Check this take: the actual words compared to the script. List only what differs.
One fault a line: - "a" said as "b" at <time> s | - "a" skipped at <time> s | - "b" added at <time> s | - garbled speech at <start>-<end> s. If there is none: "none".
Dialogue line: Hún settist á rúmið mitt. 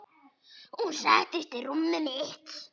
none